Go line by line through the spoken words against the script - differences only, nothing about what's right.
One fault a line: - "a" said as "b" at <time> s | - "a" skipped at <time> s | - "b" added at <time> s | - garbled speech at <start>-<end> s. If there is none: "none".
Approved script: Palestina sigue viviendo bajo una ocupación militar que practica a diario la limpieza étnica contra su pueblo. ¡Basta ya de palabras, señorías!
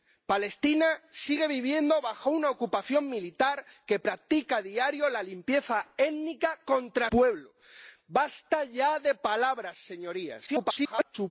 - "su" skipped at 7.1 s
- garbled speech at 10.5-11.3 s